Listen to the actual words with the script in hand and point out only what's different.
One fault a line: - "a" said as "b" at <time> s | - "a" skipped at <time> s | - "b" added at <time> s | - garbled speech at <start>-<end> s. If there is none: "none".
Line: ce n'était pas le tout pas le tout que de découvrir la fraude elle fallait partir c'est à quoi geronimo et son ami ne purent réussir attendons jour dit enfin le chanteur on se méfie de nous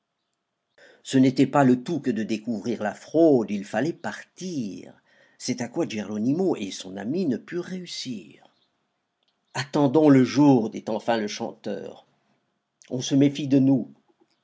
- "pas le tout" skipped at 2.0 s
- "elle" said as "il" at 3.5 s
- "le" added at 10.1 s